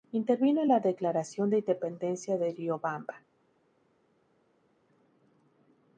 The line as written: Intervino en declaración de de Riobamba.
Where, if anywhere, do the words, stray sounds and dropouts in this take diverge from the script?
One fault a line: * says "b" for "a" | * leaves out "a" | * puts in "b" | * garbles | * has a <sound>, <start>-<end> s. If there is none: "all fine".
* puts in "la"
* puts in "independencia"